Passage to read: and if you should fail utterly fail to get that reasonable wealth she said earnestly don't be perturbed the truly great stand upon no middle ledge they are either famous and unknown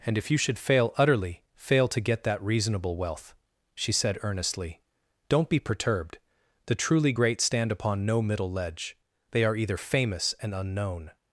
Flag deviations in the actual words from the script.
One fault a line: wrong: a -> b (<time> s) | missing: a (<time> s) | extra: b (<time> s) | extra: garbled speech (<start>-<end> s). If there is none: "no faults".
no faults